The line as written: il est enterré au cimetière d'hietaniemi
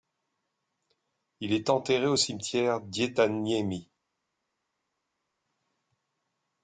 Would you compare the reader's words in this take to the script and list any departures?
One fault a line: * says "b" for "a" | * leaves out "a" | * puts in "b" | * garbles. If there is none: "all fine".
all fine